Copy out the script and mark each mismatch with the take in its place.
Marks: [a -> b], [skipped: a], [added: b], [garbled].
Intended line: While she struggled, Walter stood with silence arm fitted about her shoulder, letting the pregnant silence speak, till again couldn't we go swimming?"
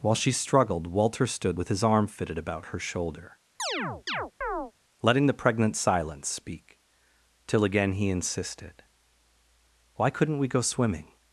While she struggled, Walter stood with [silence -> his] arm fitted about her shoulder, letting the pregnant silence speak, till again [added: he insisted Why] couldn't we go swimming?"